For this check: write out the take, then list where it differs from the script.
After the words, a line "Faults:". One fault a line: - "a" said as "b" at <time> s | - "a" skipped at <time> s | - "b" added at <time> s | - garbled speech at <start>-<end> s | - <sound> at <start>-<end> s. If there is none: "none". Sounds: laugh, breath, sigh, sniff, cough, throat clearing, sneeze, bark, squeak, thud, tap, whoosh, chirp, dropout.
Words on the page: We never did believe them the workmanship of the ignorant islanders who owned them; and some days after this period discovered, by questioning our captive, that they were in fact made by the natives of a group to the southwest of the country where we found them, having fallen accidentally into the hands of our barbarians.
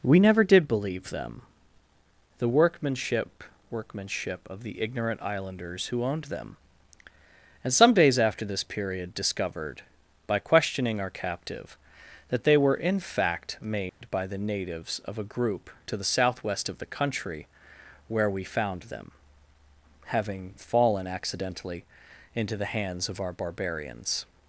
We never did believe them the workmanship workmanship of the ignorant islanders who owned them; and some days after this period discovered, by questioning our captive, that they were in fact made by the natives of a group to the southwest of the country where we found them, having fallen accidentally into the hands of our barbarians.
Faults:
- "workmanship" added at 3.7 s
- dropout at 13.9-14.0 s